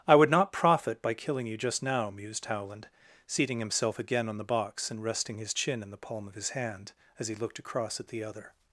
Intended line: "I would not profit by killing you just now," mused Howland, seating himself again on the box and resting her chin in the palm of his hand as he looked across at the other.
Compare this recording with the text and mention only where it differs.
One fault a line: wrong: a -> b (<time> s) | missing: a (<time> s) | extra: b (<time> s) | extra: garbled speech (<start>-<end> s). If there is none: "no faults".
wrong: her -> his (5.4 s)